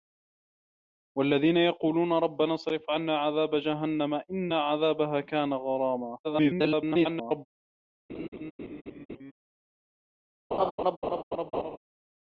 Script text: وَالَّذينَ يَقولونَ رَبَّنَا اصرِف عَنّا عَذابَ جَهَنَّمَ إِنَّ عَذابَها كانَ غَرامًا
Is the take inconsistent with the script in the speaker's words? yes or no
yes